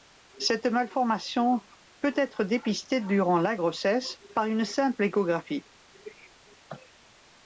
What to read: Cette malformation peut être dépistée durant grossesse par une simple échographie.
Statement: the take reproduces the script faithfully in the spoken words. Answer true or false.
false